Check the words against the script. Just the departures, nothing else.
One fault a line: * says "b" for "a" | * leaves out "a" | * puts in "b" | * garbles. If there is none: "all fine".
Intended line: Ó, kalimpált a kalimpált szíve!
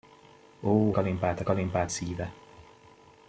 all fine